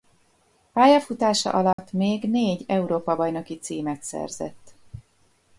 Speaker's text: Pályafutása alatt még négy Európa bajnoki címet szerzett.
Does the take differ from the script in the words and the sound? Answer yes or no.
yes